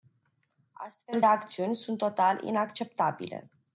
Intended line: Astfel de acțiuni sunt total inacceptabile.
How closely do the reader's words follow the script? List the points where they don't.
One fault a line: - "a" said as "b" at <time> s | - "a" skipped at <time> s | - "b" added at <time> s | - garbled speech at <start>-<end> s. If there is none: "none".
none